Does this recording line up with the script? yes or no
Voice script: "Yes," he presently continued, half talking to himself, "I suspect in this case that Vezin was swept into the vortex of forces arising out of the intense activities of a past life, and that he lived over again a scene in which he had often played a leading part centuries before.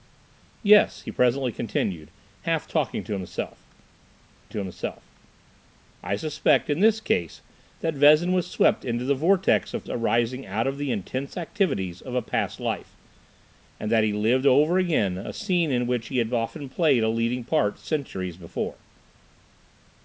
no